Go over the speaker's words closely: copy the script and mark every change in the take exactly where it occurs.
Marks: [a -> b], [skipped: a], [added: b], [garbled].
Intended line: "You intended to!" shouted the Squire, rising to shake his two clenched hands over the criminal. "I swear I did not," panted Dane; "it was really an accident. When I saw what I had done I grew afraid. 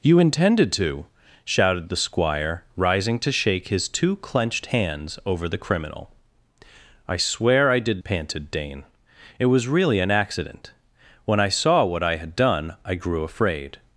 "You intended to!" shouted the Squire, rising to shake his two clenched hands over the criminal. "I swear I did [skipped: not,"] panted Dane; "it was really an accident. When I saw what I had done I grew afraid.